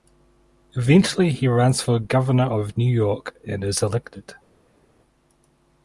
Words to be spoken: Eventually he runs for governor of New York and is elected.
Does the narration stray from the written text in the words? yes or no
no